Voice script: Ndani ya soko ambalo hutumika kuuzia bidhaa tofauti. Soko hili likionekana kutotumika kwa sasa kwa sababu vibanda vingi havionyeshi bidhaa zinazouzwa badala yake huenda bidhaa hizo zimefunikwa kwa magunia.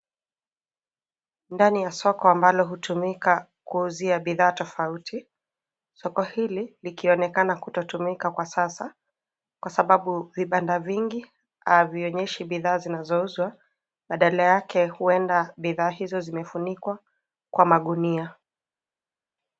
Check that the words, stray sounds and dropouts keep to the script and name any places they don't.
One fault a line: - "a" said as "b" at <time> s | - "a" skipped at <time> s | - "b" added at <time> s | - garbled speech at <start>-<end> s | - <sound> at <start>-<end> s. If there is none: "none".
none